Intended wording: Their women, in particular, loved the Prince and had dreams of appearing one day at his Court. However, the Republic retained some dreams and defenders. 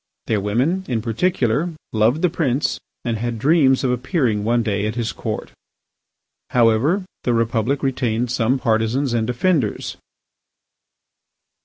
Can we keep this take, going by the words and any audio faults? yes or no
no